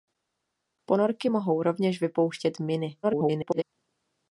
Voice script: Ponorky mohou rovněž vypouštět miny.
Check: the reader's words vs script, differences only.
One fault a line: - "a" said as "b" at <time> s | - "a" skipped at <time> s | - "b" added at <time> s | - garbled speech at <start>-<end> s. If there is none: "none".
- garbled speech at 3.0-3.6 s